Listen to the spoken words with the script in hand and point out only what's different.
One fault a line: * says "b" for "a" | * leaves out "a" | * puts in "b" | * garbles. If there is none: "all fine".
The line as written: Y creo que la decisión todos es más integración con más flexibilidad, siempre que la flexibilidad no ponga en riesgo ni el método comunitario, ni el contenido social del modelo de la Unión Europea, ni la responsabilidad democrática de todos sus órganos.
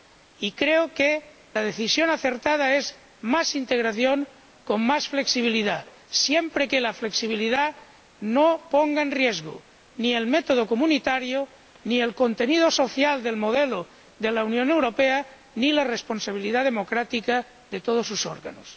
* says "acertada" for "todos"